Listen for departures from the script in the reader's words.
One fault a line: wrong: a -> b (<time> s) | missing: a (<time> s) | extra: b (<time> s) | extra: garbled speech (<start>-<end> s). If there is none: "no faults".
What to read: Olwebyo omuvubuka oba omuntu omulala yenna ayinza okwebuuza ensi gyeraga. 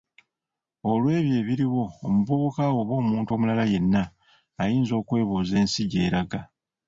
extra: ebiriwo (1.4 s)